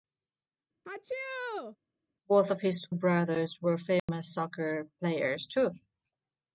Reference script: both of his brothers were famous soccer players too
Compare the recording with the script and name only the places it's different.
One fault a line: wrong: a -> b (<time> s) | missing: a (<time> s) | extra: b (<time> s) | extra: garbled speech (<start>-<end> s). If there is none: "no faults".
no faults